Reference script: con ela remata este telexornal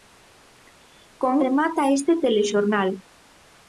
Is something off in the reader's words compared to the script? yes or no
yes